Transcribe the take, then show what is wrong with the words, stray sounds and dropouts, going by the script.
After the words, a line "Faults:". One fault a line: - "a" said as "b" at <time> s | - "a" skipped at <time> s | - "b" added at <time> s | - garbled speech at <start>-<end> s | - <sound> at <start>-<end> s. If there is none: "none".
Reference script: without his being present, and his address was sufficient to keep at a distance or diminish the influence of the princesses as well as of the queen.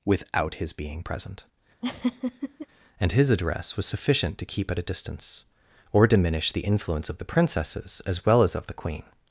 without his being present, and his address was sufficient to keep at a distance or diminish the influence of the princesses as well as of the queen.
Faults:
- laugh at 1.8-2.7 s